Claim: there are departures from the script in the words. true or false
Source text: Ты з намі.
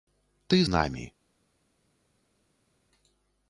false